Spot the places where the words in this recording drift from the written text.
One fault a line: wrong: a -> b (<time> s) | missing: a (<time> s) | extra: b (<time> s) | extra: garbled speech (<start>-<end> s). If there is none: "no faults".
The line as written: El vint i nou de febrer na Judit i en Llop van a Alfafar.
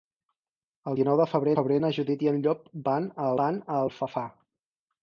missing: vint (1.0 s)
extra: febrer (1.6 s)
extra: van a (3.4 s)